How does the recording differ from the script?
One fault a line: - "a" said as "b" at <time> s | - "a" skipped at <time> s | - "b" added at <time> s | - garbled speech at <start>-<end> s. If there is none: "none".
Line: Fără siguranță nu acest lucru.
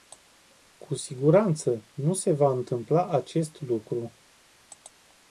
- "Fără" said as "Cu" at 0.8 s
- "se va întâmpla" added at 2.1 s